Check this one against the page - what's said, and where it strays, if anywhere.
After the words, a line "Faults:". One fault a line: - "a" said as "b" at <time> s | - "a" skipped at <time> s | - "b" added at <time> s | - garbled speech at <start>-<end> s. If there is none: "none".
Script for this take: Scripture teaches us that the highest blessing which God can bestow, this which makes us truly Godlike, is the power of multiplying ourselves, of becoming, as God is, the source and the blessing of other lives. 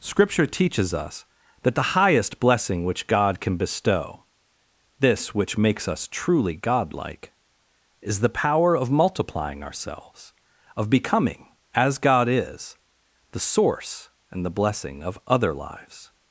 Scripture teaches us that the highest blessing which God can bestow, this which makes us truly Godlike, is the power of multiplying ourselves, of becoming, as God is, the source and the blessing of other lives.
Faults:
none